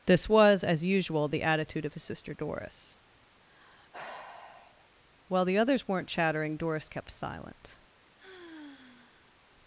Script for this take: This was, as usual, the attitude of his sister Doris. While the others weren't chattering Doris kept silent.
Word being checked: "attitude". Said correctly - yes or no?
yes